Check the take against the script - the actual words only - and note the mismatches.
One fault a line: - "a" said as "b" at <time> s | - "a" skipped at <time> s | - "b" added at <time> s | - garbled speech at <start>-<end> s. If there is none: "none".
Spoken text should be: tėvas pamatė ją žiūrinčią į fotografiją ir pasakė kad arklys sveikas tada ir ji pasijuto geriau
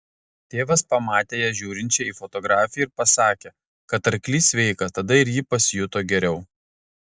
none